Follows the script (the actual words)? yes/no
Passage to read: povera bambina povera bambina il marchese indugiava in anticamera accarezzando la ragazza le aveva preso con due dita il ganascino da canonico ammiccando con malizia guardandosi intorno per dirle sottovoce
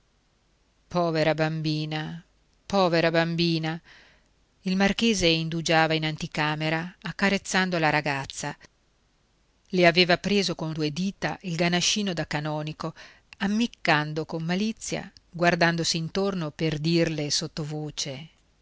yes